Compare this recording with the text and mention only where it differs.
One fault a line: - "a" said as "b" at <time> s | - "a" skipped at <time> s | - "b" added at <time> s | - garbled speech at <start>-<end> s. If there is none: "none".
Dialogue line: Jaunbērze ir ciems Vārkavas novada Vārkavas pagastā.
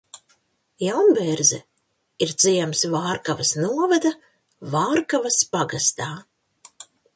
none